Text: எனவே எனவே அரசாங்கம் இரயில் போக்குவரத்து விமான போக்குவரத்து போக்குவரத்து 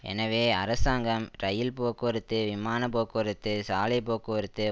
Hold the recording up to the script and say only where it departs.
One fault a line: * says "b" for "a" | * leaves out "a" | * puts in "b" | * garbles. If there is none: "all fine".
* leaves out "எனவே"
* puts in "சாலை"